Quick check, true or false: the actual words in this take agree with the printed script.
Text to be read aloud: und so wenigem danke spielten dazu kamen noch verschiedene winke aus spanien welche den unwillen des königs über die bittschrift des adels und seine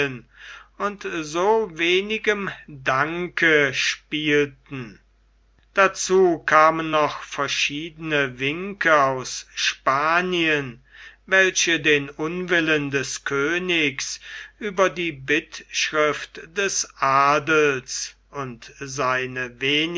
true